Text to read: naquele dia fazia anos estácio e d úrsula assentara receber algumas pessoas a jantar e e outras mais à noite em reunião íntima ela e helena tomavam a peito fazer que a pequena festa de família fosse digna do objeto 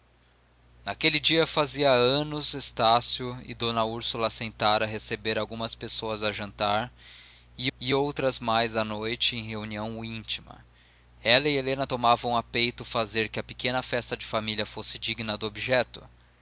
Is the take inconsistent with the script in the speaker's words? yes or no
no